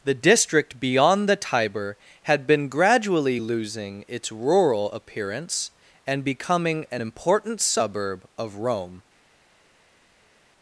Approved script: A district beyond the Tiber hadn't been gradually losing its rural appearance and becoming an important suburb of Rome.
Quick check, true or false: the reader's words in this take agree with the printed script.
false